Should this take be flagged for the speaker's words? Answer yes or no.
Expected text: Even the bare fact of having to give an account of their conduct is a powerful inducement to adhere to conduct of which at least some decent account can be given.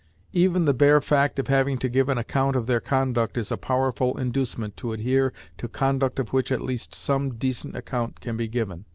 no